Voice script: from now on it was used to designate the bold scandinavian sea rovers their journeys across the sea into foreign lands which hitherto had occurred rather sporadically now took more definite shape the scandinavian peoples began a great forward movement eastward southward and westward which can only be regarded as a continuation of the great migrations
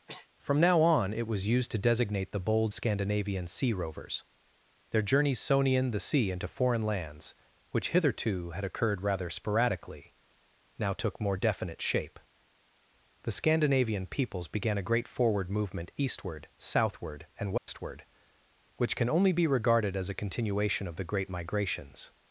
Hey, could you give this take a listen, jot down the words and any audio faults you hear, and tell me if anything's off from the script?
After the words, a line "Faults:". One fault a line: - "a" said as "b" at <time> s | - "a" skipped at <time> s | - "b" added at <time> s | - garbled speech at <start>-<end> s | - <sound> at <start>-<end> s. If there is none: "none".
from now on it was used to designate the bold scandinavian sea rovers their journeys sonian the sea into foreign lands which hitherto had occurred rather sporadically now took more definite shape the scandinavian peoples began a great forward movement eastward southward and westward which can only be regarded as a continuation of the great migrations
Faults:
- sneeze at 0.1-0.3 s
- "across" said as "sonian" at 5.4 s
- dropout at 17.6-17.7 s